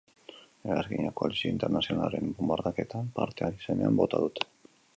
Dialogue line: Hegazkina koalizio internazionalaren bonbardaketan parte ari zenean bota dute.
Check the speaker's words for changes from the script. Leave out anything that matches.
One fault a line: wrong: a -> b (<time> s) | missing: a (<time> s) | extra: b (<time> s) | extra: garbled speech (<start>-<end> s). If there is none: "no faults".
no faults